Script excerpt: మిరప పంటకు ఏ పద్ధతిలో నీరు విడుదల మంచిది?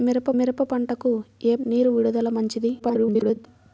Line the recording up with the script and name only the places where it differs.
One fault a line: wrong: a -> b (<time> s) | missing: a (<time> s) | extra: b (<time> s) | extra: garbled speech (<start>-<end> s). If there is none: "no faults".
extra: మిరప (0.3 s)
missing: పద్ధతిలో (1.5 s)
extra: garbled speech (2.8-3.5 s)